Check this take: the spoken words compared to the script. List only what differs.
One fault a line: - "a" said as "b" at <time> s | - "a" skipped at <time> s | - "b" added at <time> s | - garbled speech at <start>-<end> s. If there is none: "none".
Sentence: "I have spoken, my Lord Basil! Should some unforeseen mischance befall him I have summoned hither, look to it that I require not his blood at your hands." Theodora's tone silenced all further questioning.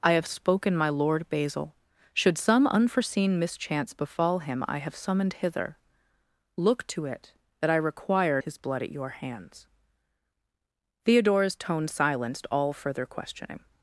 - "not" skipped at 8.4 s